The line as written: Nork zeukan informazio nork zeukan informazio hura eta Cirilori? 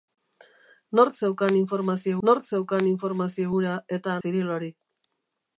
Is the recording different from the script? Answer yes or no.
no